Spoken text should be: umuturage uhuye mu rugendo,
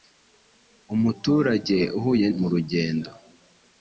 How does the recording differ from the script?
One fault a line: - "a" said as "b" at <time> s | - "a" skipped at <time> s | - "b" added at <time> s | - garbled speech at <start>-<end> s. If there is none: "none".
none